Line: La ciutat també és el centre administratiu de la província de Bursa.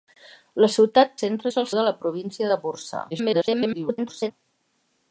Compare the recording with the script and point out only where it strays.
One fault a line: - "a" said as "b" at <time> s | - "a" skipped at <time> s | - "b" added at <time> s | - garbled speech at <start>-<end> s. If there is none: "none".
- "també" said as "centre" at 1.2 s
- "centre administratiu" skipped at 1.7 s
- garbled speech at 3.1-4.3 s